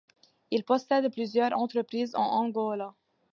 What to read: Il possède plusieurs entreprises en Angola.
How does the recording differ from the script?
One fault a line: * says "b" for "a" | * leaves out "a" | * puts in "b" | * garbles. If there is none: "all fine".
all fine